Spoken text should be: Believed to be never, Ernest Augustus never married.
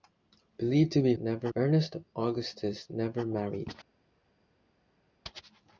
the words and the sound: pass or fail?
pass